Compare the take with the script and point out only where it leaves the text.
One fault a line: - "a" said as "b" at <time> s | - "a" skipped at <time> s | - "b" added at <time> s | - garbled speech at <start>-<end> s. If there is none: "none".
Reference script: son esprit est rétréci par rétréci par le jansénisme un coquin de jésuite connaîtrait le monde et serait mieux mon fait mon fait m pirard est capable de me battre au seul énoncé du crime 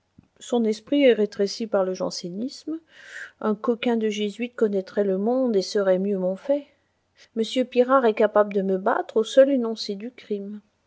- "rétréci par" skipped at 1.8 s
- "mon fait" skipped at 6.7 s